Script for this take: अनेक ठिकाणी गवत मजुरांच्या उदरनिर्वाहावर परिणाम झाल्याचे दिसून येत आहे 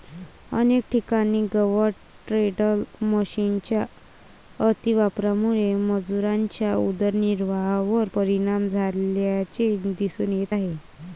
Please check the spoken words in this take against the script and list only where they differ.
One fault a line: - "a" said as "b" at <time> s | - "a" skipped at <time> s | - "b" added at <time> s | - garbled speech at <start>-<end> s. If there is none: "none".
- "टेडर मशिनच्या अतिवापरामुळे" added at 2.3 s